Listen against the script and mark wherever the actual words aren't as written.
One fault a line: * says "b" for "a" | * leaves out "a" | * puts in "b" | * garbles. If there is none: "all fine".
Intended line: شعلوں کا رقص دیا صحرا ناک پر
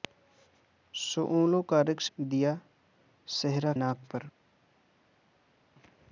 all fine